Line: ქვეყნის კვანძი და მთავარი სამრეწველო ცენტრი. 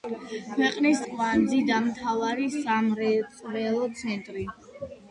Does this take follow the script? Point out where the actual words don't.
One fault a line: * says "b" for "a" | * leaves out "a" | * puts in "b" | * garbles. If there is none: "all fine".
all fine